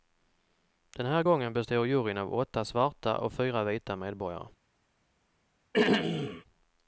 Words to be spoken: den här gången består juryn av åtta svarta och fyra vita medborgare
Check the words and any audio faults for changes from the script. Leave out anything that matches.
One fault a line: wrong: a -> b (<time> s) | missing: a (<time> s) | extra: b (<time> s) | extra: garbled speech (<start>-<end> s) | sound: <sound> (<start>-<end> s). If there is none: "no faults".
sound: throat clearing (5.7-6.4 s)